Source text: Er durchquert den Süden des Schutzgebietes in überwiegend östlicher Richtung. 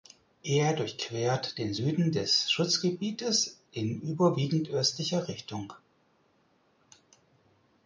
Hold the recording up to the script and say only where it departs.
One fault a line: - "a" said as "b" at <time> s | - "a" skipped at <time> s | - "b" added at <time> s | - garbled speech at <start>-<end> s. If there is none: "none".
none